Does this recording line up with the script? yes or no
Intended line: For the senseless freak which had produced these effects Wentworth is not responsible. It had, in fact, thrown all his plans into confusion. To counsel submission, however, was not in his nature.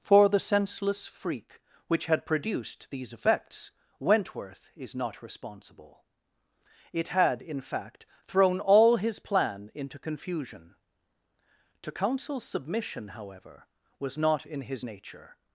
no